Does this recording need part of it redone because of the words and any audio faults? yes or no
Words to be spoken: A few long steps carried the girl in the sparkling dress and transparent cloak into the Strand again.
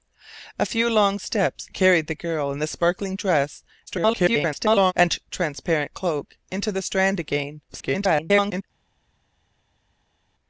yes